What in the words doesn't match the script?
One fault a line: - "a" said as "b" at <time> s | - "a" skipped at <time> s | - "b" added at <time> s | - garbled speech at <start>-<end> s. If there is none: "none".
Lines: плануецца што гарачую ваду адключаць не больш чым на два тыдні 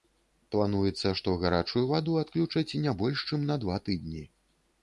none